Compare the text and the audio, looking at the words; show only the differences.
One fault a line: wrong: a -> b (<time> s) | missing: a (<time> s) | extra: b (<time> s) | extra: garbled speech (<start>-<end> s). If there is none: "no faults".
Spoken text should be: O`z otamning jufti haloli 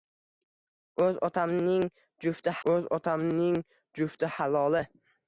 extra: o`z otamning jufti (2.7 s)